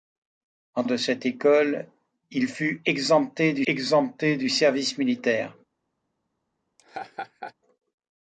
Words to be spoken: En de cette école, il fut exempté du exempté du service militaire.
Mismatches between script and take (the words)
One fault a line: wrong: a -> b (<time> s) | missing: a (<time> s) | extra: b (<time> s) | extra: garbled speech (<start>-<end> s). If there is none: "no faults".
no faults